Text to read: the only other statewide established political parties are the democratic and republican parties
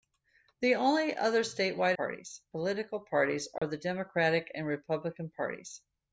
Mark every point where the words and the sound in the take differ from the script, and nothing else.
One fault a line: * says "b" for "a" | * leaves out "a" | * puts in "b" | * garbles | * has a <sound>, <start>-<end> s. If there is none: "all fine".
* says "parties" for "established"
* has a dropout, 3.6-3.6 s